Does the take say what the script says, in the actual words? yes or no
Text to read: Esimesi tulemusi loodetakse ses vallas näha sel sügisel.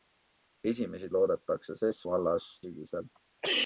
no